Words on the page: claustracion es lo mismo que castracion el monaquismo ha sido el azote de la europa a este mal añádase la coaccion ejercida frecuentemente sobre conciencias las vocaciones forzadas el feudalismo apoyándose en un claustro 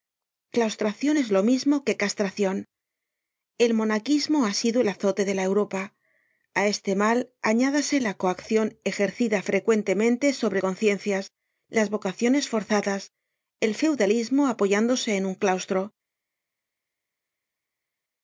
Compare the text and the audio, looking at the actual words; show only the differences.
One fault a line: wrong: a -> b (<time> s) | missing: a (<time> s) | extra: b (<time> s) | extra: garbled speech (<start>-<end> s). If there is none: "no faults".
no faults